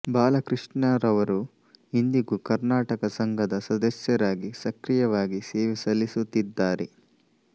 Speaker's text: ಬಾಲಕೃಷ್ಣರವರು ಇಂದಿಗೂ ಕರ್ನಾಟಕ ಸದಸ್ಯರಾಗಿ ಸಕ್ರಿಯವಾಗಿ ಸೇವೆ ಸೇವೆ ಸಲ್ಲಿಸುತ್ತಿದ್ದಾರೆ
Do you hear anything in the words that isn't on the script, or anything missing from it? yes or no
yes